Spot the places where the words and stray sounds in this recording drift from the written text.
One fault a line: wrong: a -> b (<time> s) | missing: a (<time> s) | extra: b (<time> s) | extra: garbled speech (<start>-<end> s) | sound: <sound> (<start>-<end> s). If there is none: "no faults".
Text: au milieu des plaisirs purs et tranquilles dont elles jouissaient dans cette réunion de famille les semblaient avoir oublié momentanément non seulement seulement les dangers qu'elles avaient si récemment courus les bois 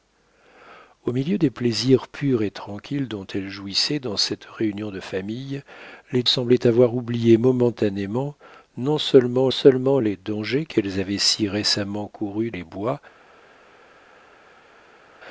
no faults